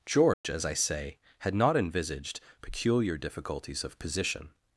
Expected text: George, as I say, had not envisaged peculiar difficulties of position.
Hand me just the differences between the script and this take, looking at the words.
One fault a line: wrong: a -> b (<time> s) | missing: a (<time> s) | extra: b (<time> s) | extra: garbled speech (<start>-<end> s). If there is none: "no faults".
no faults